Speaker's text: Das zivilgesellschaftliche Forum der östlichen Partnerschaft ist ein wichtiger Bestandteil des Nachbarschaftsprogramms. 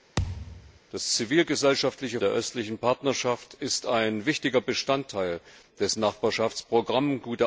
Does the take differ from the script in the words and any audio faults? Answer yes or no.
yes